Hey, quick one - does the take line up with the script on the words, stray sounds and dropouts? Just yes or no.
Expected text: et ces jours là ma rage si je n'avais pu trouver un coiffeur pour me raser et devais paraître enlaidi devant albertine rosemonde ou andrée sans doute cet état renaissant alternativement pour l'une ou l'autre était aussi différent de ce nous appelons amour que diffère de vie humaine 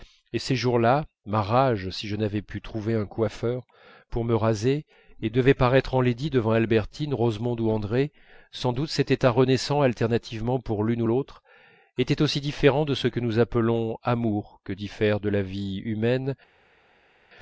no